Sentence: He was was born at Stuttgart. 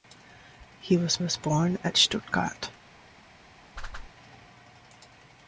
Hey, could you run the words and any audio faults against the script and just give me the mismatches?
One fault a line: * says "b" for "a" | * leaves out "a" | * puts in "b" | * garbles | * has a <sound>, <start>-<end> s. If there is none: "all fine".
* has a whoosh, 3.8-4.1 s